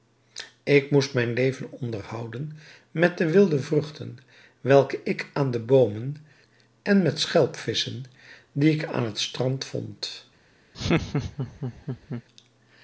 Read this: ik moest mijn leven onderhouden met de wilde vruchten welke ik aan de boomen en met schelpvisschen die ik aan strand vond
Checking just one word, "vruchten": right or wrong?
right